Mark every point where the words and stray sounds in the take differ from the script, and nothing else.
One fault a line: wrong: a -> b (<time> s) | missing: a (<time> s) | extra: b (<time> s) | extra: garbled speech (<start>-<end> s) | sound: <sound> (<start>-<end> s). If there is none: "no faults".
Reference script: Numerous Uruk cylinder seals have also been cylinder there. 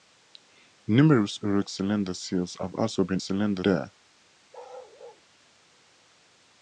sound: bark (4.5-5.3 s)